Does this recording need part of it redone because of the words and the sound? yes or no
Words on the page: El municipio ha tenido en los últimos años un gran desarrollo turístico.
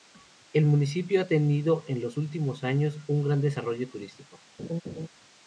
yes